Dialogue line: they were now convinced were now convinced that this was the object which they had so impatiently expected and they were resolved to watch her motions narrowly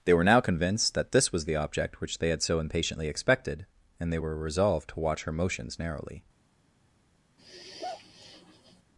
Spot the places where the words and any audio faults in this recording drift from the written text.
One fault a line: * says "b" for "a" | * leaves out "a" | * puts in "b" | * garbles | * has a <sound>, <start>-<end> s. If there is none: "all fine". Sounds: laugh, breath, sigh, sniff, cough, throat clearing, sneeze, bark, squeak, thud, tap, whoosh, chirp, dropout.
* leaves out "were now convinced"
* has a sigh, 7.4-8.8 s